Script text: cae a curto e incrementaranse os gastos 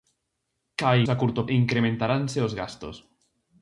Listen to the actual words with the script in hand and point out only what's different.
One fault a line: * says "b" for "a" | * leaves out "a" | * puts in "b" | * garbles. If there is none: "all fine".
all fine